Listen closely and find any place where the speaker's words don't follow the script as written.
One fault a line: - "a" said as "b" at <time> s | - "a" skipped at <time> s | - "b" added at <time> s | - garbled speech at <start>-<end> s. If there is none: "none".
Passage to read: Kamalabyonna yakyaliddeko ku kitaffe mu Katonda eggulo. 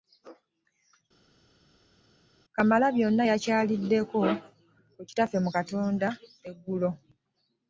none